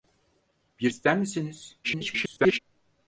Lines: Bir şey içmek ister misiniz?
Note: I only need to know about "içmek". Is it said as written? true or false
false